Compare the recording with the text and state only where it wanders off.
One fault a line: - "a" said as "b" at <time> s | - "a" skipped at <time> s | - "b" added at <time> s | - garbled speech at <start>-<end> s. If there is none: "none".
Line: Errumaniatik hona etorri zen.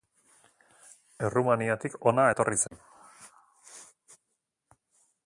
none